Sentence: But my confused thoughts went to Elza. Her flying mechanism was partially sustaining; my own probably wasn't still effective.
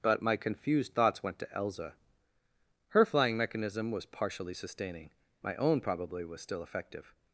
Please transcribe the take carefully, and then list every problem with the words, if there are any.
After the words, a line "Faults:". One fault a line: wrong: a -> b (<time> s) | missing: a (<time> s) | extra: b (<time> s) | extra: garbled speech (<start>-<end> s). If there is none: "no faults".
But my confused thoughts went to Elza. Her flying mechanism was partially sustaining; my own probably was still effective.
Faults:
wrong: wasn't -> was (6.2 s)